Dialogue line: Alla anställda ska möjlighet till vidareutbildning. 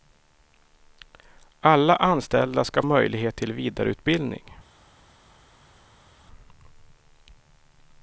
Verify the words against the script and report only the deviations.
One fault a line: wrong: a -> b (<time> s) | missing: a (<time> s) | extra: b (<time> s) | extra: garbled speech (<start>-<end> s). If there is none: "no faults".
no faults